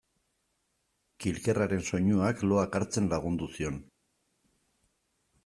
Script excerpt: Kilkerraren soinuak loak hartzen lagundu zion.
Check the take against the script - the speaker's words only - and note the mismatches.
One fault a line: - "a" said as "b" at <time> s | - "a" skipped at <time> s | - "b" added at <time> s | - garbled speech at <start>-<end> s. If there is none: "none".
none